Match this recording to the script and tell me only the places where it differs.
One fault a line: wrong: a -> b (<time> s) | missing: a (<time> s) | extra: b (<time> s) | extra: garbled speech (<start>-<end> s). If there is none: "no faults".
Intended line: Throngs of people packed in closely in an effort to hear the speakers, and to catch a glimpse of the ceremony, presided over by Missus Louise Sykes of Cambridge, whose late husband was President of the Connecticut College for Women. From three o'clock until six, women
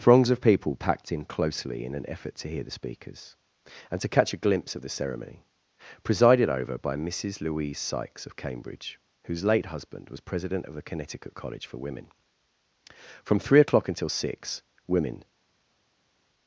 no faults